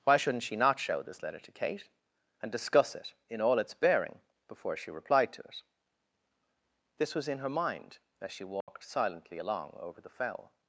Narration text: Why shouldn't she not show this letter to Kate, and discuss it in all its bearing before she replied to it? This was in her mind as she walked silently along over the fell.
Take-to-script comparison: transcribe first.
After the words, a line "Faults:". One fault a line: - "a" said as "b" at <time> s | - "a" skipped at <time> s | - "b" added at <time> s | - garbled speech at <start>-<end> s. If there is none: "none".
Why shouldn't she not show this letter to Kate, and discuss it in all its bearing before she replied to it? This was in her mind as she walked silently along over the fell.
Faults:
none